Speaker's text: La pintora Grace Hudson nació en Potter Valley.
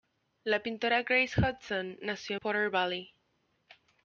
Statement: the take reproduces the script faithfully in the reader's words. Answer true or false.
false